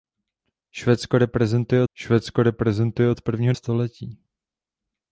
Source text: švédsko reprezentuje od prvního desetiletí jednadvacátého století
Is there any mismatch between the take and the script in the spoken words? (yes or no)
yes